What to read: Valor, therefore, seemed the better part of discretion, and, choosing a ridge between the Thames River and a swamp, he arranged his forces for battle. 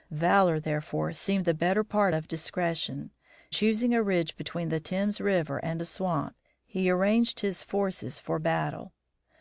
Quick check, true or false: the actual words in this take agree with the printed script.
false